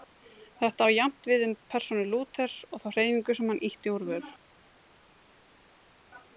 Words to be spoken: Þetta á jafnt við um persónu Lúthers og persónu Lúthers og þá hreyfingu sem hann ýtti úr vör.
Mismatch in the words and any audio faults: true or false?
true